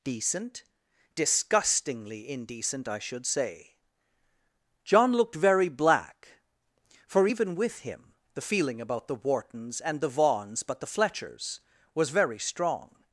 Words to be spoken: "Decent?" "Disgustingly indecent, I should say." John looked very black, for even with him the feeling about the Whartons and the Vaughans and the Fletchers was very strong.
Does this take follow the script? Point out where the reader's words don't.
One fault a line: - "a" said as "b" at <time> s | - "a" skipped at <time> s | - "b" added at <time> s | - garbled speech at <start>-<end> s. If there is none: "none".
- "and" said as "but" at 10.6 s